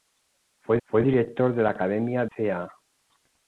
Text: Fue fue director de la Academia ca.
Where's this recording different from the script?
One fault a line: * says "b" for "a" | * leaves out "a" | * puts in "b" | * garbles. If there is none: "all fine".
all fine